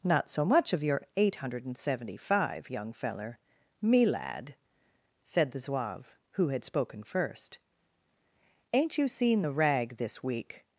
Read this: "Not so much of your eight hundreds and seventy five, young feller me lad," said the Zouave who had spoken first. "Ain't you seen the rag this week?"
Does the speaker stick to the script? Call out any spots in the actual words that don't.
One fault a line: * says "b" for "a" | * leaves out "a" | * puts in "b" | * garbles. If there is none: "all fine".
* says "hundred" for "hundreds"